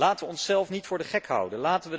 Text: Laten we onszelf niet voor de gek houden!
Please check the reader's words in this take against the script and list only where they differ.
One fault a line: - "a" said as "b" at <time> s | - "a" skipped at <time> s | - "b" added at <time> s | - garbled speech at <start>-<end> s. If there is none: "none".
none